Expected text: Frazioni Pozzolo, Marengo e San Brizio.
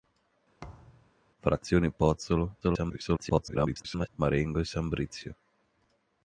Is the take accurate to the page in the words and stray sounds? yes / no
no